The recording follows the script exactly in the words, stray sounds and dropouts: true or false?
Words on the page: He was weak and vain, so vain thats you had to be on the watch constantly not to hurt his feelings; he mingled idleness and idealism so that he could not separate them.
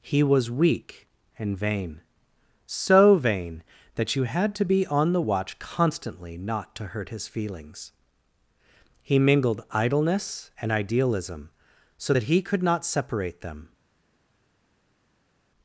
false